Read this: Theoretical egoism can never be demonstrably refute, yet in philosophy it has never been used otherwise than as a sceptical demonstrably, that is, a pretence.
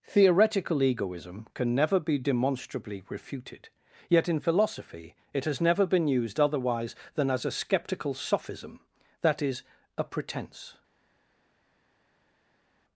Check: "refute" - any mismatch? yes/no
yes